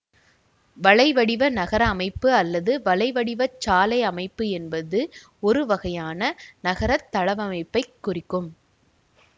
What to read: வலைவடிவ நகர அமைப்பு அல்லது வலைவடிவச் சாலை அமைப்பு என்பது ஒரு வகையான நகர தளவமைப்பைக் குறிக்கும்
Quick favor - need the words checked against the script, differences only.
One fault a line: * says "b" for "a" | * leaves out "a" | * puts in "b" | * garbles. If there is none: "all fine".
all fine